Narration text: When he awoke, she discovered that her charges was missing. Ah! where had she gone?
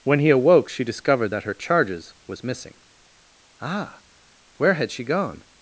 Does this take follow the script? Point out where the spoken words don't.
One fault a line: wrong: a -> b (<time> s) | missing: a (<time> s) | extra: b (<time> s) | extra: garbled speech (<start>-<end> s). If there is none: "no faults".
no faults